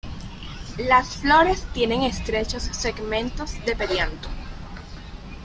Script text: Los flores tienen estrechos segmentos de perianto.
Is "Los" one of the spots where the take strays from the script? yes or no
yes